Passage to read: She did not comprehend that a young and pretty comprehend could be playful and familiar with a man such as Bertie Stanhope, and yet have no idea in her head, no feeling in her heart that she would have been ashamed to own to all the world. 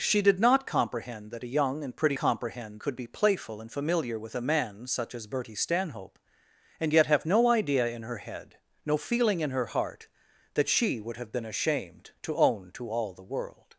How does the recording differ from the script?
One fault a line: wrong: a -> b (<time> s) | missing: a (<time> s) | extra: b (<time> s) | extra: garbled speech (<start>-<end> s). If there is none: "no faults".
no faults